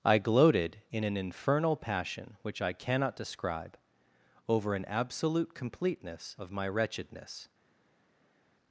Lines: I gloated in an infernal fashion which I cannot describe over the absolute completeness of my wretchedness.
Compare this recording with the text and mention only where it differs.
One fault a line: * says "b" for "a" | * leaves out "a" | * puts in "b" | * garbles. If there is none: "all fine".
* says "passion" for "fashion"
* says "an" for "the"